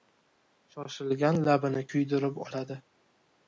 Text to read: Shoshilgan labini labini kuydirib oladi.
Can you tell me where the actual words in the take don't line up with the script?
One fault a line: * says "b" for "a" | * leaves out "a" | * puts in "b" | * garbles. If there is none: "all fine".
* leaves out "labini"